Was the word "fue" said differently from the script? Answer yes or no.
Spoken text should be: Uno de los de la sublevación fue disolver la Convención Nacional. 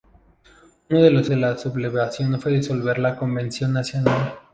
no